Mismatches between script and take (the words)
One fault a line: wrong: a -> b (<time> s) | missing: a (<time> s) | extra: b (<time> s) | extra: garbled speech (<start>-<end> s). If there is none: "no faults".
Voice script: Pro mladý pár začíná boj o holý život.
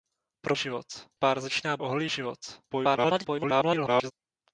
wrong: mladý -> život (0.5 s)
missing: boj (1.8 s)
extra: garbled speech (2.7-4.1 s)